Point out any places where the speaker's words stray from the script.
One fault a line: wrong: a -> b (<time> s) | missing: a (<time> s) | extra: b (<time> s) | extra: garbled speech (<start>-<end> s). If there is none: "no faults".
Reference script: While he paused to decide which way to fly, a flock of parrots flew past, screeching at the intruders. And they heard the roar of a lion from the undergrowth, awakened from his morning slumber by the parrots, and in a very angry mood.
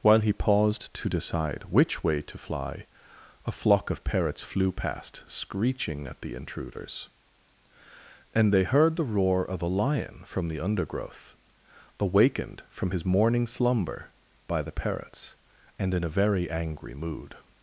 no faults